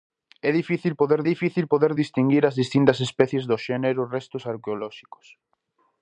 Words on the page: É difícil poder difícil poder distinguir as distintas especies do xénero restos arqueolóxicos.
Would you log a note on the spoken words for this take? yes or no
no